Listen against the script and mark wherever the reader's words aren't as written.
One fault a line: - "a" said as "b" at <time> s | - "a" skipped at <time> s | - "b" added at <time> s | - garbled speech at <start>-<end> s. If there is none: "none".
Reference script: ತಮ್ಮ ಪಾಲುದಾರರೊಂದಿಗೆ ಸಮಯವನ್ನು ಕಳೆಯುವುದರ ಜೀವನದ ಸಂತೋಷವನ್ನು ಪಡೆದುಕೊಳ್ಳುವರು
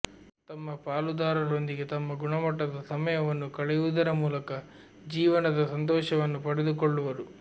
- "ತಮ್ಮ ಗುಣಮಟ್ಟದ" added at 1.9 s
- "ಮೂಲಕ" added at 4.2 s